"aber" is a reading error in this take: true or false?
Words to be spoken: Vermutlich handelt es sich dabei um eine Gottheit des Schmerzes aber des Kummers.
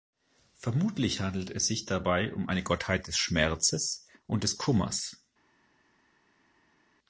true